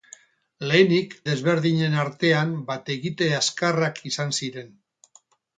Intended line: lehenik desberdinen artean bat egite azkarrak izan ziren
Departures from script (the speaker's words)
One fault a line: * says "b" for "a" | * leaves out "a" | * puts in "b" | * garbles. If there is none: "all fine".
all fine